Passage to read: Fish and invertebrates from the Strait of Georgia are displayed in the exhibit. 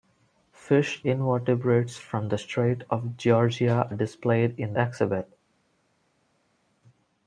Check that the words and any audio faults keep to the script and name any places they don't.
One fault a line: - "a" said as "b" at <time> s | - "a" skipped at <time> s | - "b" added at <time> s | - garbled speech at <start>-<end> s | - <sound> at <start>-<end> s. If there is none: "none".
- "and" skipped at 1.0 s
- "are" skipped at 3.9 s
- "the" skipped at 4.8 s